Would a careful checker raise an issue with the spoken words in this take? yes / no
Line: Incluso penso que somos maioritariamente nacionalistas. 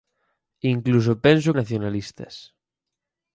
yes